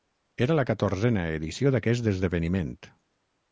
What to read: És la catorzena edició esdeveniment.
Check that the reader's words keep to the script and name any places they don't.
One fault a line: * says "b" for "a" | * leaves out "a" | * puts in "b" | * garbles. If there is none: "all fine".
* says "Era" for "És"
* puts in "d'aquest"